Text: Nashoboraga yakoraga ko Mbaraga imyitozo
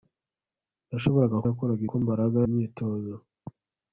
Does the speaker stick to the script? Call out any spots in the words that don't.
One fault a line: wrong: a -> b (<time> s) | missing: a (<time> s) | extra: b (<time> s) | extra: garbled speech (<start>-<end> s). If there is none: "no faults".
no faults